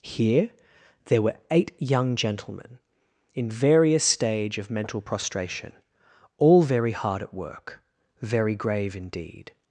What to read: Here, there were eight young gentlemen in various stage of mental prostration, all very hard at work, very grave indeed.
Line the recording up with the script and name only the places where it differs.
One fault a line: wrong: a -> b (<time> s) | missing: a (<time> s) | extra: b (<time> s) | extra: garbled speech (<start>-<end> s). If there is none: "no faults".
no faults